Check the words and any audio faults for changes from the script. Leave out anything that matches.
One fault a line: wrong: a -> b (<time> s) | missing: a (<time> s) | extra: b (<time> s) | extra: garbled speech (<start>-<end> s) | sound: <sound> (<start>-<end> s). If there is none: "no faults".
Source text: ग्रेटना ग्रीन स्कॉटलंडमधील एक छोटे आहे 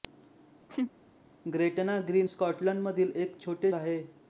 sound: laugh (0.7-0.9 s)